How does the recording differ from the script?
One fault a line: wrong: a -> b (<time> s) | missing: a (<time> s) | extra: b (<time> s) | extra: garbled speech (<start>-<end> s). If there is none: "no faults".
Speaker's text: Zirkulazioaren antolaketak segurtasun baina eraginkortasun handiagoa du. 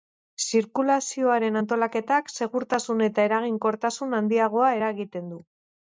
wrong: baina -> eta (3.1 s)
extra: eragiten (4.8 s)